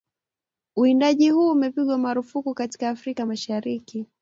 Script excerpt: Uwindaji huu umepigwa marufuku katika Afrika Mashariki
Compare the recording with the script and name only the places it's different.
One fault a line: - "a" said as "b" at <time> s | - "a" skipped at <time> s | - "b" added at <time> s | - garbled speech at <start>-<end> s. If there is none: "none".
none